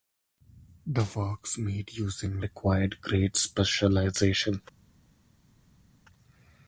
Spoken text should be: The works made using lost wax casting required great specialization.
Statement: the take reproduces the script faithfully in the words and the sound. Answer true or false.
false